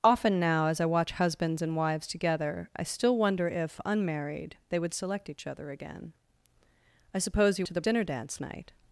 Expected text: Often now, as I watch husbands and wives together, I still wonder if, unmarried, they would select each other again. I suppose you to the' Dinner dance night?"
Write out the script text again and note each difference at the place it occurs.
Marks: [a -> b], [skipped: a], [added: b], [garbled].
Often now, as I watch husbands and wives together, I still wonder if, unmarried, they would select each other again. I suppose you to the' Dinner dance night?"